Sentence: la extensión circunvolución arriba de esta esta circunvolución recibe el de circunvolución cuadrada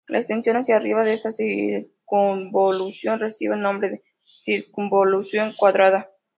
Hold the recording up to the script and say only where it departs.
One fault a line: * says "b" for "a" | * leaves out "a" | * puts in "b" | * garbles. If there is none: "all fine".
* says "hacia" for "circunvolución"
* leaves out "esta"
* puts in "nombre"